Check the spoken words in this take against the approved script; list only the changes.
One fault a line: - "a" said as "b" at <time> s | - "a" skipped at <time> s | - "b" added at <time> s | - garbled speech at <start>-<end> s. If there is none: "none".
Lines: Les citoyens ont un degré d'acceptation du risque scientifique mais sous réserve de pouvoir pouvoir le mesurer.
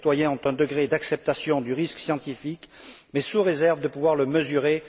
- "pouvoir" skipped at 4.1 s